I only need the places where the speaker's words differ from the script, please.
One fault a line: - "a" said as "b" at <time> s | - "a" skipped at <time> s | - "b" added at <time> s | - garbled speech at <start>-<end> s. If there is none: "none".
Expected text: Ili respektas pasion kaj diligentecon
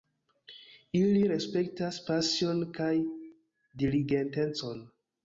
none